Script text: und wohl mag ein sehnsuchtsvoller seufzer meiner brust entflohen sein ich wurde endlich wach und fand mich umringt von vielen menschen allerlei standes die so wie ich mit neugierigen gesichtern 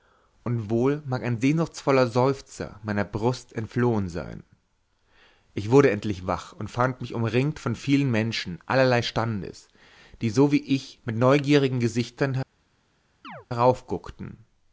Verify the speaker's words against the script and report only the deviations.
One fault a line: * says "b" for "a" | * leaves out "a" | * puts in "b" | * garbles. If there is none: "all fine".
all fine